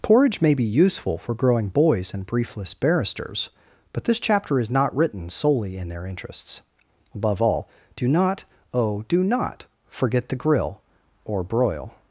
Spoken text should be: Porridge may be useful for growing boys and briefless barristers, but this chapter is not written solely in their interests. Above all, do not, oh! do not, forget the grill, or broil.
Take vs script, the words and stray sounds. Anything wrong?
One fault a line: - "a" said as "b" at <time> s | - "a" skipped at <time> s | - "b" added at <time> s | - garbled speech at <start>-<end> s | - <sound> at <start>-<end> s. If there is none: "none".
none